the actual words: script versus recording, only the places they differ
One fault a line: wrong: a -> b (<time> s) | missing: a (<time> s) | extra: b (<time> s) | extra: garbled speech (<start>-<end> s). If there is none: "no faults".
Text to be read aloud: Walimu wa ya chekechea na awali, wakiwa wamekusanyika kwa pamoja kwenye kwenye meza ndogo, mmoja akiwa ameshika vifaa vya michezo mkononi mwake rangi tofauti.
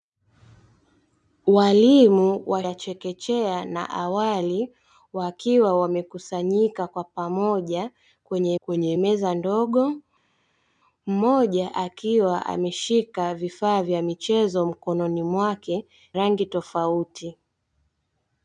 no faults